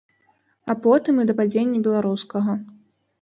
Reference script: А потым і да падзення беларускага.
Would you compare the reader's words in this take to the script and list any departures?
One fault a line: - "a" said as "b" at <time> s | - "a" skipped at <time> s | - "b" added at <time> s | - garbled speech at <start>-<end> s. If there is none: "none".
none